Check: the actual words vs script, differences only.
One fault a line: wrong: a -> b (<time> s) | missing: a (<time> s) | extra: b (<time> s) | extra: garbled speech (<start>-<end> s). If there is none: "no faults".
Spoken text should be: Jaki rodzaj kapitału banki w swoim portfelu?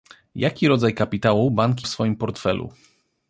no faults